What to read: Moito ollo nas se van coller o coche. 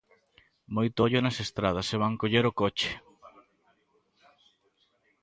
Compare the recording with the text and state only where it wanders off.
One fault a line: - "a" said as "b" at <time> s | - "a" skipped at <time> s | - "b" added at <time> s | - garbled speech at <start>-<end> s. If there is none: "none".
- "estradas" added at 1.4 s